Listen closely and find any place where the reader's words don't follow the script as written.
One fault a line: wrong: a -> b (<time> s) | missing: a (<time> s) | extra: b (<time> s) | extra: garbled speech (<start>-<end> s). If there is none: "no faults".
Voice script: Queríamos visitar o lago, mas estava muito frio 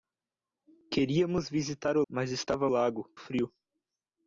missing: lago (2.0 s)
wrong: muito -> lago (2.7 s)